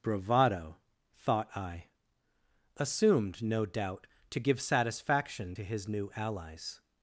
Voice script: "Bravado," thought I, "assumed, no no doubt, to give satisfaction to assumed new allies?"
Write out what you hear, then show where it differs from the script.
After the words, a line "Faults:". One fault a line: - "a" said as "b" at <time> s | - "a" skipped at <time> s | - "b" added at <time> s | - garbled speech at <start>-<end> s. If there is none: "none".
"Bravado," thought I, "assumed, no doubt, to give satisfaction to his new allies?"
Faults:
- "no" skipped at 3.7 s
- "assumed" said as "his" at 5.6 s